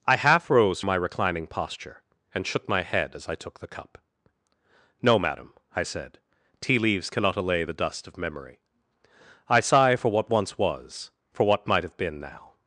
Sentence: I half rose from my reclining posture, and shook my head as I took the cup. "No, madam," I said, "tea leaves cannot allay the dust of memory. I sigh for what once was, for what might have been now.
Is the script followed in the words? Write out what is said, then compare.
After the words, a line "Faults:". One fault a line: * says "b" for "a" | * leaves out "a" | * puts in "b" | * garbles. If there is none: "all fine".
I half rose my reclining posture, and shook my head as I took the cup. "No, madam," I said, "tea leaves cannot allay the dust of memory. I sigh for what once was, for what might have been now.
Faults:
* leaves out "from"